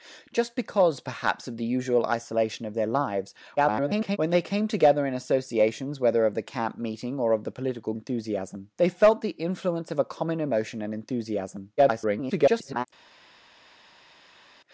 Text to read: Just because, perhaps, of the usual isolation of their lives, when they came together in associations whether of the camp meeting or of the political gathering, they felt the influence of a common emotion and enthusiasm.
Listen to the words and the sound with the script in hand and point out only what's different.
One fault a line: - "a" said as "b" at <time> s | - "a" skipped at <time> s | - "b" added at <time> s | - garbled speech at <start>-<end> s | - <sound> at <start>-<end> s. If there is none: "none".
- garbled speech at 3.6-4.2 s
- "gathering" said as "enthusiasm" at 7.9 s
- garbled speech at 11.8-12.9 s